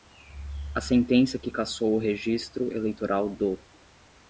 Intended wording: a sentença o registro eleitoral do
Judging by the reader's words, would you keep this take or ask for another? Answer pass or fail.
fail